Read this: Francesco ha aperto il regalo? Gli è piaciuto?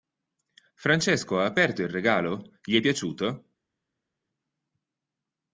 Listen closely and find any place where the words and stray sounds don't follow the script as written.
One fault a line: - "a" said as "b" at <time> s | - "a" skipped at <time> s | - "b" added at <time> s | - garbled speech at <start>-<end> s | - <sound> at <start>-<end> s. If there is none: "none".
none